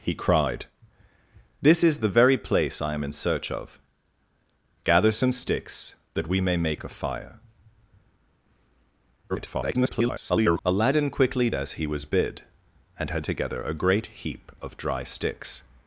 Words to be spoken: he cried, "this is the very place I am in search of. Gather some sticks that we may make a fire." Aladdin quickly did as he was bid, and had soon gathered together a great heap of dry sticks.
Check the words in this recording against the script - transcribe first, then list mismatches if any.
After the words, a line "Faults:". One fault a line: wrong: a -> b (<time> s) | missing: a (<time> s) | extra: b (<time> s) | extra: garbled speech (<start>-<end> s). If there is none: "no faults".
he cried, "this is the very place I am in search of. Gather some sticks that we may make a fire." [garbled] Aladdin quickly as he was bid, and had together a great heap of dry sticks.
Faults:
extra: garbled speech (9.3-10.6 s)
missing: did (11.5 s)
missing: soon gathered (13.3 s)